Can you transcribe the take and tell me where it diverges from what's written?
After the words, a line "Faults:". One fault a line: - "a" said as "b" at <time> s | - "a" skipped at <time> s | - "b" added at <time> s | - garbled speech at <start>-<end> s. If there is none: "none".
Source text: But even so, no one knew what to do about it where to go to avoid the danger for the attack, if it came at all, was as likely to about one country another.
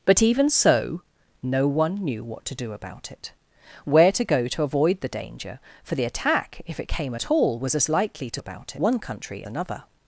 But even so, no one knew what to do about it where to go to avoid the danger for the attack, if it came at all, was as likely to about one country another.
Faults:
none